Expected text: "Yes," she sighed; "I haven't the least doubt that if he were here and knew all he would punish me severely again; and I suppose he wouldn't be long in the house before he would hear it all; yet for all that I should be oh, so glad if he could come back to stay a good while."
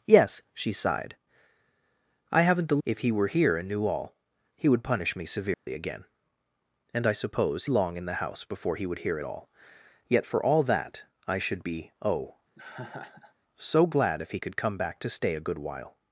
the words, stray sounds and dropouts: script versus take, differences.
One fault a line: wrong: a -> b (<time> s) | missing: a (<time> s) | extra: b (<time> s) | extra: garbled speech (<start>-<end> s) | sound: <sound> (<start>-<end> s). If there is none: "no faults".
missing: least doubt that (2.8 s)
sound: dropout (5.5-5.7 s)
missing: he wouldn't be (7.6 s)
sound: laugh (12.6-13.3 s)